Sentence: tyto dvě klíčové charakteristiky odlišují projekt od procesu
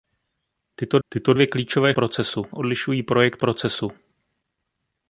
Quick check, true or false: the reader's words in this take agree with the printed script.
false